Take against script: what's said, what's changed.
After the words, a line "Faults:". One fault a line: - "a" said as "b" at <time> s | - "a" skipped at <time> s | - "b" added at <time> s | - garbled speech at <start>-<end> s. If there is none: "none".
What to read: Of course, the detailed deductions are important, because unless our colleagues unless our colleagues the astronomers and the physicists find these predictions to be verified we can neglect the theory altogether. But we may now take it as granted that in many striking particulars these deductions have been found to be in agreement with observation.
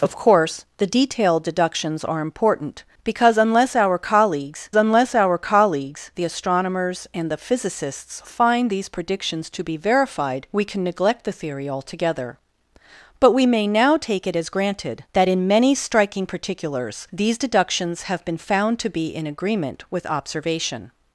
Of course, the detailed deductions are important, because unless our colleagues unless our colleagues the astronomers and the physicists find these predictions to be verified we can neglect the theory altogether. But we may now take it as granted that in many striking particulars these deductions have been found to be in agreement with observation.
Faults:
none